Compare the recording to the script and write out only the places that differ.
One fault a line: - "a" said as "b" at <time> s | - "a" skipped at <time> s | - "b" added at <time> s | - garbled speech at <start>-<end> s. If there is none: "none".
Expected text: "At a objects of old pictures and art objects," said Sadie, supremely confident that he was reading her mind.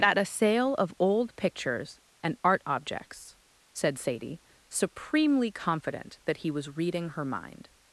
- "objects" said as "sale" at 0.2 s